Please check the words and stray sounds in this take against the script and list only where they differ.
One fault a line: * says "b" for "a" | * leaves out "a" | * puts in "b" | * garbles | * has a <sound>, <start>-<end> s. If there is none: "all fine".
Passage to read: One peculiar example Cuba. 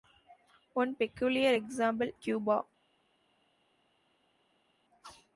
all fine